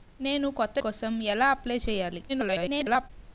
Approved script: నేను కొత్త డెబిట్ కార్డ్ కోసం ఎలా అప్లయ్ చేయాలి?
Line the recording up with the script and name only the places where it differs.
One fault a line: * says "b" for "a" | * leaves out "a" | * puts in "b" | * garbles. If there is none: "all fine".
* leaves out "డెబిట్ కార్డ్"
* garbles